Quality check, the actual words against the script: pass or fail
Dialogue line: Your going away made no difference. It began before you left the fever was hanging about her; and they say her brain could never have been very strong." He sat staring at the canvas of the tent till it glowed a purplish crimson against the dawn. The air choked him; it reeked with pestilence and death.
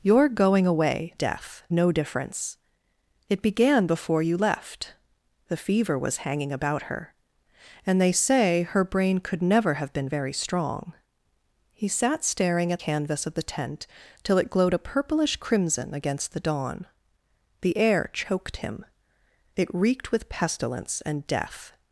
fail